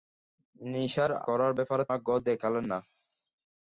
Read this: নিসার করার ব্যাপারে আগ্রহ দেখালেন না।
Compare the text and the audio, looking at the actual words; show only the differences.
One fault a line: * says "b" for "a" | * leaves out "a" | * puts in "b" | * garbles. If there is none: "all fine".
all fine